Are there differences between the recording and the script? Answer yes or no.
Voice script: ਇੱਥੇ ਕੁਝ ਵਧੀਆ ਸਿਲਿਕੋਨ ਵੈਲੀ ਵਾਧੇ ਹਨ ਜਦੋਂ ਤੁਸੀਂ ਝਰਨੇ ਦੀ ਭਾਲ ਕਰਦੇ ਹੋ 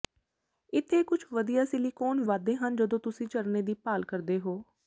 yes